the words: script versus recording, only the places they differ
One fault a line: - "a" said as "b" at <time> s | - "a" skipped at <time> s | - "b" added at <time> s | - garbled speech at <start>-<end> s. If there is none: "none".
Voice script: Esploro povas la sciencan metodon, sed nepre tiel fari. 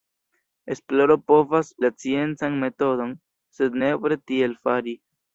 none